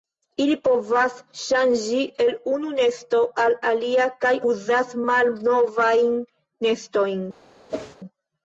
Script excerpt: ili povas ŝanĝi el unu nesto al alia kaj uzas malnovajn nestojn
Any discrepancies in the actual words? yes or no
no